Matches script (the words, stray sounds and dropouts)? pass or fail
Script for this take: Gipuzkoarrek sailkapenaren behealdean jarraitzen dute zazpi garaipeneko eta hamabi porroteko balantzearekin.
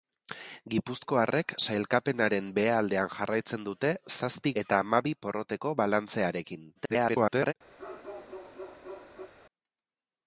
fail